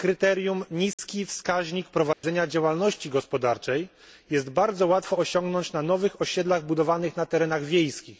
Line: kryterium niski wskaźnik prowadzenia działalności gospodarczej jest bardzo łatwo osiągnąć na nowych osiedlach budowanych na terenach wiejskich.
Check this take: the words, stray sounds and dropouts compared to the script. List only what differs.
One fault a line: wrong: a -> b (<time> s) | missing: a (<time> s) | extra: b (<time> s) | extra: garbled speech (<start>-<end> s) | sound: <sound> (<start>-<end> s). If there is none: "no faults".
sound: dropout (0.9-1.0 s)
sound: dropout (2.1-2.2 s)